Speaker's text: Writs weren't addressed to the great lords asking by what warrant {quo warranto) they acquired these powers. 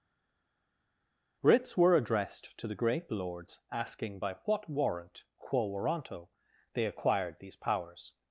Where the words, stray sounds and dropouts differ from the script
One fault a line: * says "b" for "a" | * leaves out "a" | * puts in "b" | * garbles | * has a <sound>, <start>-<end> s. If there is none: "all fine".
* says "were" for "weren't"